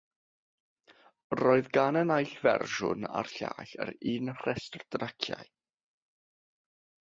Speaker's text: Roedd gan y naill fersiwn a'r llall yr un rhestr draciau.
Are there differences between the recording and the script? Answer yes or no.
no